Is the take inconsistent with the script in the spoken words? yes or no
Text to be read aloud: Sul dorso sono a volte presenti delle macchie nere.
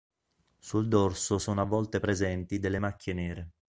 no